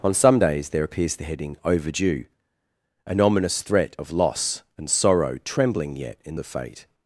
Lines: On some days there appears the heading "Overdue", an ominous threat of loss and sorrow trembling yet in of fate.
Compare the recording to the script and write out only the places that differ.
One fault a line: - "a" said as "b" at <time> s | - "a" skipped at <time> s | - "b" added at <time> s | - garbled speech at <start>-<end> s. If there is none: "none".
none